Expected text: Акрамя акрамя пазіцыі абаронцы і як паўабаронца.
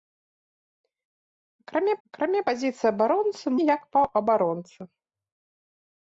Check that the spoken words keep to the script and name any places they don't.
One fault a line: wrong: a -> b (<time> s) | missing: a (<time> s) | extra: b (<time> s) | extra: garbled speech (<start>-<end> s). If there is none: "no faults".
no faults